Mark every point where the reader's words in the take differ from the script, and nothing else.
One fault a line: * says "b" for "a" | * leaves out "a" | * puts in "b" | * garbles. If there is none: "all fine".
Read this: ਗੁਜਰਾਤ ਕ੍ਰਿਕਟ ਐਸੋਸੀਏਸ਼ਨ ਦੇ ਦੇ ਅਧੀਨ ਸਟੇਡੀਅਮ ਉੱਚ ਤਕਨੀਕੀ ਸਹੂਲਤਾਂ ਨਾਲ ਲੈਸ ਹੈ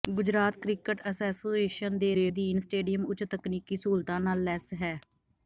all fine